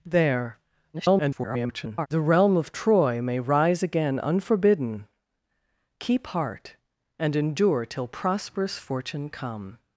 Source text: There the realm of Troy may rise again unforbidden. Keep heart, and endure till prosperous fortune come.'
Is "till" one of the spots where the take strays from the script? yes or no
no